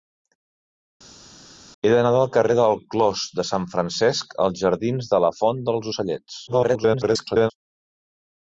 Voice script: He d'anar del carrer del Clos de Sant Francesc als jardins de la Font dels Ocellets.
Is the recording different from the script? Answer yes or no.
yes